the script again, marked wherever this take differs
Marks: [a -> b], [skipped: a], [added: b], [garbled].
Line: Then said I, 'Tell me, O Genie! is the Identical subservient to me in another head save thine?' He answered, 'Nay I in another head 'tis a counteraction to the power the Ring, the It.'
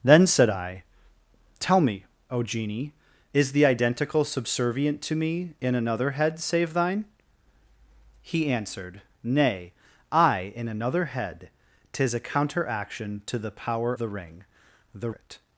Then said I, 'Tell me, O Genie! is the Identical subservient to me in another head save thine?' He answered, 'Nay I in another head 'tis a counteraction to the power the Ring, the It.'